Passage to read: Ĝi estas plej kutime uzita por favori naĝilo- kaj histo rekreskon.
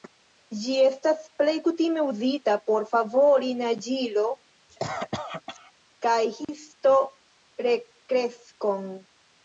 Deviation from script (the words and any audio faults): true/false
true